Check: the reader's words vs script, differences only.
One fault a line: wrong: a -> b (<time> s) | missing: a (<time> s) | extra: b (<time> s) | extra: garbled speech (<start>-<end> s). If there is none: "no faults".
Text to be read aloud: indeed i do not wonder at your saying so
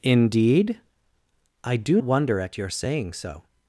missing: not (2.0 s)